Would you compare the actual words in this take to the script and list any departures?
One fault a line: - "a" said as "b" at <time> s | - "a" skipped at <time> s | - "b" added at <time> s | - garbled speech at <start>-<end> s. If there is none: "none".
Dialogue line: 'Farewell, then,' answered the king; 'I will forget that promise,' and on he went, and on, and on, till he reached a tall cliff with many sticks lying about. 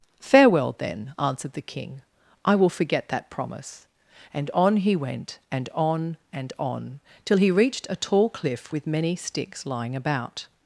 none